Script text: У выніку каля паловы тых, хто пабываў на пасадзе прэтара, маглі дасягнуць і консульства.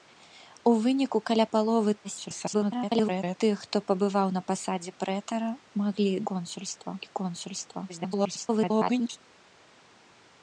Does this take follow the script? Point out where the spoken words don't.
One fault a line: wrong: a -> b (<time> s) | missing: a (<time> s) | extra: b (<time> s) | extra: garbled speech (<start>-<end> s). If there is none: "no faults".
extra: garbled speech (2.0-3.4 s)
wrong: дасягнуць -> консульства (6.3 s)
extra: garbled speech (7.9-9.2 s)